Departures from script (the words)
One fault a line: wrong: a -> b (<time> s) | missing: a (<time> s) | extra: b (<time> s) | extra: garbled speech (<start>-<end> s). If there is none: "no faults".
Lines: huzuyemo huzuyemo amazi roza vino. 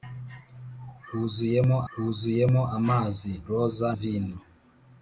no faults